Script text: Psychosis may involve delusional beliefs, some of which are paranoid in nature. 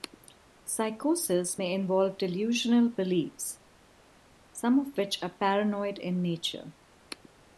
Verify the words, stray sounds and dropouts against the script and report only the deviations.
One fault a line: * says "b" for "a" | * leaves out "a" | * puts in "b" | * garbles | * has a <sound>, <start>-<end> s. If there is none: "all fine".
all fine